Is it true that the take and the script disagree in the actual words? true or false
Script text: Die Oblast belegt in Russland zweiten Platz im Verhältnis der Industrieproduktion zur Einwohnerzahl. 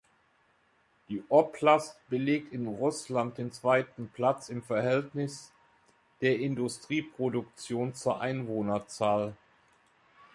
true